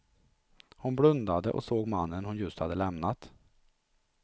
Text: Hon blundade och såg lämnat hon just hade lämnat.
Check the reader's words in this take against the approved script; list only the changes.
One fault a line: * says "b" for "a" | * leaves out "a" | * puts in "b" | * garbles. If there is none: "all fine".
* says "mannen" for "lämnat"